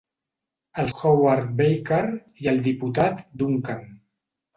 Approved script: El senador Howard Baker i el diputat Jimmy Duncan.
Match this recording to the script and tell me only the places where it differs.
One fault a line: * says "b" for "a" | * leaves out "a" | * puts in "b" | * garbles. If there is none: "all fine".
* leaves out "senador"
* leaves out "Jimmy"